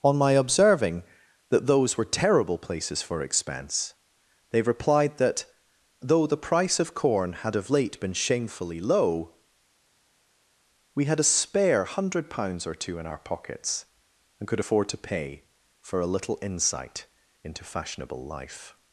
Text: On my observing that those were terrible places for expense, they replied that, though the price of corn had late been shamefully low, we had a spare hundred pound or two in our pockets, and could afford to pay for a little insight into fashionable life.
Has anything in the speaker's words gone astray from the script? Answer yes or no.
yes